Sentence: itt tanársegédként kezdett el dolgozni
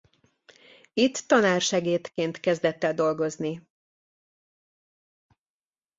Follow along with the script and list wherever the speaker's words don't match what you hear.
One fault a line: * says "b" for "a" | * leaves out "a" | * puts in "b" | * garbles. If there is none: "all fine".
all fine